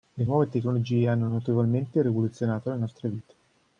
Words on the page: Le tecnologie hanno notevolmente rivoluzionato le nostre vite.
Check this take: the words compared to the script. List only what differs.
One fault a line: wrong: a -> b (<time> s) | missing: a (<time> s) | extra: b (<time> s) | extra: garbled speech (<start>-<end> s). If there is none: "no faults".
extra: nuove (0.2 s)